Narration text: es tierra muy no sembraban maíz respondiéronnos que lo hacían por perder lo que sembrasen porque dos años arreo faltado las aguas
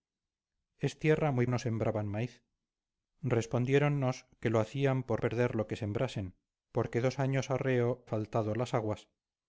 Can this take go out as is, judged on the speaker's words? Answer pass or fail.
pass